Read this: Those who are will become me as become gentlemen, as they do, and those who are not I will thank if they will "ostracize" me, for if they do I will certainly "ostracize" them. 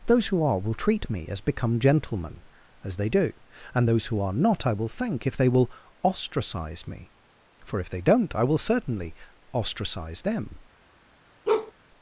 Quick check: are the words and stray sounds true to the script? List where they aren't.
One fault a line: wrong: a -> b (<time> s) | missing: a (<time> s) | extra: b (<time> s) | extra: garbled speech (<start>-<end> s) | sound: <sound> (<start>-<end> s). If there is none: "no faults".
wrong: become -> treat (0.7 s)
wrong: do -> don't (8.0 s)
sound: bark (11.5-11.7 s)